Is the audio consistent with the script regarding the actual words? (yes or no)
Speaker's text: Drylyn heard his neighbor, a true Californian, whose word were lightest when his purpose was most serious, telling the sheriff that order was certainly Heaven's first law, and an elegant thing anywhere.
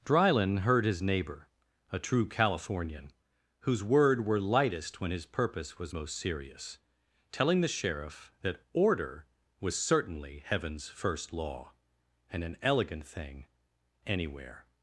yes